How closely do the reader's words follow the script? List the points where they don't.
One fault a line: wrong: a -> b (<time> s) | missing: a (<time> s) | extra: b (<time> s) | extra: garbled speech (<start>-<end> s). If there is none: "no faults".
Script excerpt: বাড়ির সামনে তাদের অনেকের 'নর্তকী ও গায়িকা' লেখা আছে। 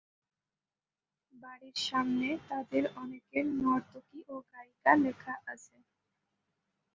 no faults